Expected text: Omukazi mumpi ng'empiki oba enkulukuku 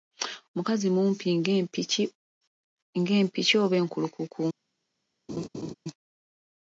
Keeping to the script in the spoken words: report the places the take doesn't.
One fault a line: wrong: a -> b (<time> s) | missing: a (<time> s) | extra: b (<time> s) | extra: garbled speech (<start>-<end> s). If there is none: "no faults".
no faults